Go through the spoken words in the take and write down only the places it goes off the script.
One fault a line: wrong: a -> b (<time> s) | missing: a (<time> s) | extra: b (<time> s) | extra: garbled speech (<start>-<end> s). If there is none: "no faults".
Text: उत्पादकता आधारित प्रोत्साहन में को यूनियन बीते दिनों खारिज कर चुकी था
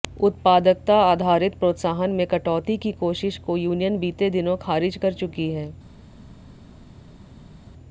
extra: कटौती की कोशिश (2.3 s)
wrong: था -> है (5.5 s)